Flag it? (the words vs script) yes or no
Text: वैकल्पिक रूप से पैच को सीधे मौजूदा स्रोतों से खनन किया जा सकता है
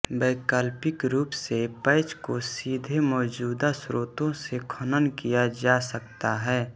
no